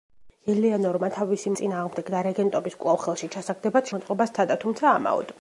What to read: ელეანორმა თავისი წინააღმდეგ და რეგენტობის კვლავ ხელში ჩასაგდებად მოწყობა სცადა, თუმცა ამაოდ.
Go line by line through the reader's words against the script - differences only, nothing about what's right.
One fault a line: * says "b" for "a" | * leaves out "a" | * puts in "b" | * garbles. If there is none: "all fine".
all fine